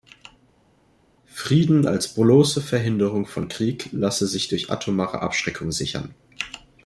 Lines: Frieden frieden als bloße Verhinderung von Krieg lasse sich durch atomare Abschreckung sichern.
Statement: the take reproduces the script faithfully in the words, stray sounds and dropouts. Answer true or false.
false